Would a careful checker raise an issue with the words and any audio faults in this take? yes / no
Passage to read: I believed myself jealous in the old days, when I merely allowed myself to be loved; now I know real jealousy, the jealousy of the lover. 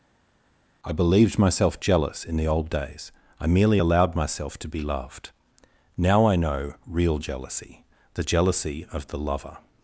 yes